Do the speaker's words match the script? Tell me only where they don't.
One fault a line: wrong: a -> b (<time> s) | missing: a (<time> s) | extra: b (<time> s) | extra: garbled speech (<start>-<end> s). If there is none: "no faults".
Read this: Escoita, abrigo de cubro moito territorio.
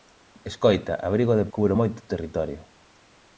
no faults